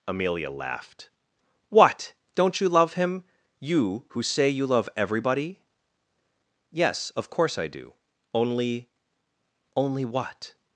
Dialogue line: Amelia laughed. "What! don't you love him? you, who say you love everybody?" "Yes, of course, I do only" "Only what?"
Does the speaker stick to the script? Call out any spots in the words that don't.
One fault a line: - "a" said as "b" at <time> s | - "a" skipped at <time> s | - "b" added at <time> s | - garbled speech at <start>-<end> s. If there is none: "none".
none